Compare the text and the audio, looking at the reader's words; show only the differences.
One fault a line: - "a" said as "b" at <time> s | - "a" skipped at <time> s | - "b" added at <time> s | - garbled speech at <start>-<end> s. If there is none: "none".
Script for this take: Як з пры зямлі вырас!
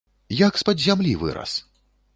- "пры" said as "пад" at 0.7 s